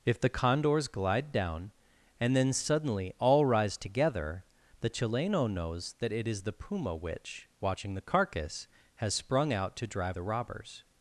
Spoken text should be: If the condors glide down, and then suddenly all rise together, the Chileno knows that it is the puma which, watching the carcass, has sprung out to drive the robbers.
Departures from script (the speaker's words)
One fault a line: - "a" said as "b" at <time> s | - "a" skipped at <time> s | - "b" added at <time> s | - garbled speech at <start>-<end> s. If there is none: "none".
none